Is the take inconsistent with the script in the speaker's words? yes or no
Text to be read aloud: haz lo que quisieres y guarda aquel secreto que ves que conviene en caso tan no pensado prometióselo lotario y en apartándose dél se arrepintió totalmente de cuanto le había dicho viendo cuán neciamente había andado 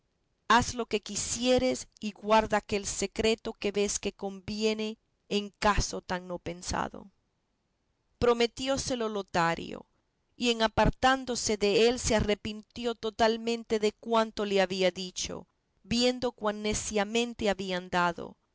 no